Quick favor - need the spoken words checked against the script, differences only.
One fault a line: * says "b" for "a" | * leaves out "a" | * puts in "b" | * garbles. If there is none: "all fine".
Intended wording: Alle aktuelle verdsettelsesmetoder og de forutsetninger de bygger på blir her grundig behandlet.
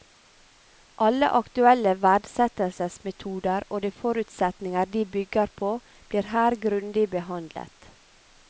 all fine